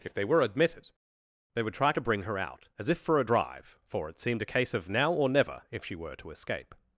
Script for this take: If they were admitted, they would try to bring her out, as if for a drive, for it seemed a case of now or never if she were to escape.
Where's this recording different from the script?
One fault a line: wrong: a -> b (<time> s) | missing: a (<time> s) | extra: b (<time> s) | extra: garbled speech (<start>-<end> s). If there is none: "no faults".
no faults